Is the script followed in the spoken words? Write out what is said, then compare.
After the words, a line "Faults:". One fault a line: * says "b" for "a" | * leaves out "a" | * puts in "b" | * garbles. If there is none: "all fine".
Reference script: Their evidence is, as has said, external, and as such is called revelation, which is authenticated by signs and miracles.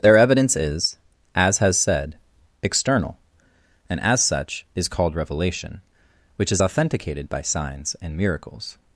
Their evidence is, as has said, external, and as such is called revelation, which is authenticated by signs and miracles.
Faults:
all fine